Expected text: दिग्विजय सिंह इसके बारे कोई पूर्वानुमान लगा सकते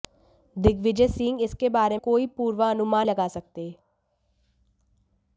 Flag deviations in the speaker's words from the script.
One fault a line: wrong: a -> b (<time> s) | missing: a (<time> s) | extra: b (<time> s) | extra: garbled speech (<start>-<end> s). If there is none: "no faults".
no faults